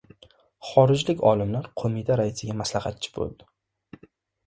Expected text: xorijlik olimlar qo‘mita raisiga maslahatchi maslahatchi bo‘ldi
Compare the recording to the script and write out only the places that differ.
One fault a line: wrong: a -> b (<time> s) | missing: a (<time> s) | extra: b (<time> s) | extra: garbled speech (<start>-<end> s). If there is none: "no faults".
missing: maslahatchi (3.2 s)